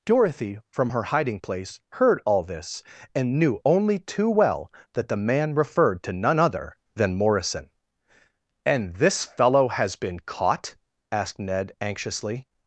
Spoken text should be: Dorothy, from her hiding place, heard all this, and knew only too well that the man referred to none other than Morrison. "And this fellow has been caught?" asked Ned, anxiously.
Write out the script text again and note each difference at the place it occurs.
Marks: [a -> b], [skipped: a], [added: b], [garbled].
Dorothy, from her hiding place, heard all this, and knew only too well that the man referred to none other than Morrison. "And this fellow has been caught?" asked Ned, anxiously.